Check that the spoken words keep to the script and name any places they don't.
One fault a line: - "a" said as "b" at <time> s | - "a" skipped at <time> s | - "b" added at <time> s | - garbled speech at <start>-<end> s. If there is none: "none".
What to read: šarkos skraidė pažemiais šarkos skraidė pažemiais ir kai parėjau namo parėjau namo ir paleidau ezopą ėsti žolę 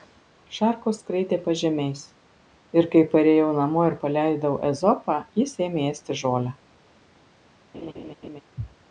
- "šarkos skraidė pažemiais" skipped at 2.0 s
- "parėjau namo" skipped at 3.9 s
- "jis ėmė" added at 5.4 s